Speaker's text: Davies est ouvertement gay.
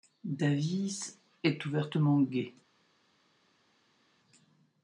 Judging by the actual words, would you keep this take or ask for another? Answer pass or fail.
pass